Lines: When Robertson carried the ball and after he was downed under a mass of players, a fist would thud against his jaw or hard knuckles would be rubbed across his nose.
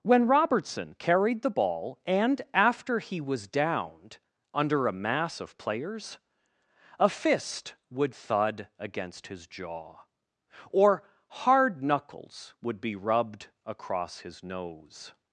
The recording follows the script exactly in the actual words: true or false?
true